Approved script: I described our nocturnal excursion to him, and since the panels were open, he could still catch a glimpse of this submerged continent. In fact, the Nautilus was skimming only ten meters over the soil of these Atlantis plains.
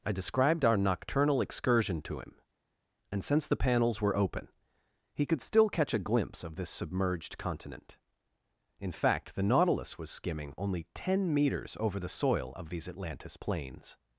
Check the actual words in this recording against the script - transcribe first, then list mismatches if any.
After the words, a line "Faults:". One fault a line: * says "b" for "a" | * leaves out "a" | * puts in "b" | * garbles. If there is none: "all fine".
I described our nocturnal excursion to him, and since the panels were open, he could still catch a glimpse of this submerged continent. In fact, the Nautilus was skimming only ten meters over the soil of these Atlantis plains.
Faults:
all fine